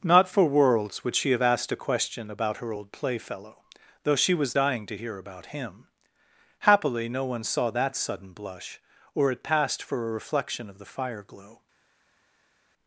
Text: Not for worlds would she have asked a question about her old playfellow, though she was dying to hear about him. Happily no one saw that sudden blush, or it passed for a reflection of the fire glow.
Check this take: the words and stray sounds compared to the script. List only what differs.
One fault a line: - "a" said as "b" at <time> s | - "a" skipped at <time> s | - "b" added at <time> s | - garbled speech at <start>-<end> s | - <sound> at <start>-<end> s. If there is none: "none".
none